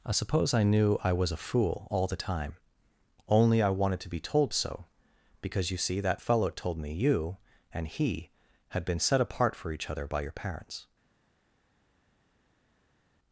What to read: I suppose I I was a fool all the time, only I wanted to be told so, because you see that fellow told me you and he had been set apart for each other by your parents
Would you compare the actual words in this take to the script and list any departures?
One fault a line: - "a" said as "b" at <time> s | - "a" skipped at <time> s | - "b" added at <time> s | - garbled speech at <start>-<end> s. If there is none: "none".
- "knew" added at 0.6 s